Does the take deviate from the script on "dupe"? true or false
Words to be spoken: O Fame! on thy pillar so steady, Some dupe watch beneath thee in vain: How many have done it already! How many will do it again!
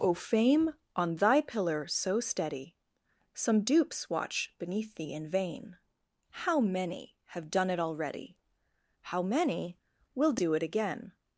true